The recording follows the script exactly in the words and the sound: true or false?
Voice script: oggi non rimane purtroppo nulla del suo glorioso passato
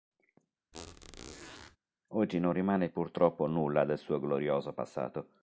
false